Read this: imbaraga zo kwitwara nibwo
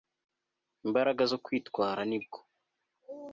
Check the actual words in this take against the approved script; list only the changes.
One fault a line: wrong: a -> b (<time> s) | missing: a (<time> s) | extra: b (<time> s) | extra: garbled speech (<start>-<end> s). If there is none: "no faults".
no faults